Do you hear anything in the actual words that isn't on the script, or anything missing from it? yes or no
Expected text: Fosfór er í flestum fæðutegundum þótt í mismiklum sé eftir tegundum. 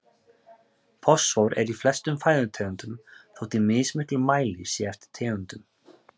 yes